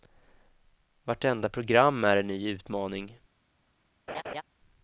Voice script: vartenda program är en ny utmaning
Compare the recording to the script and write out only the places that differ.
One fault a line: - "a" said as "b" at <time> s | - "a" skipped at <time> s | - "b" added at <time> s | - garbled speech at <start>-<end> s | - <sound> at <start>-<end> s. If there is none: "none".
- laugh at 4.1-4.4 s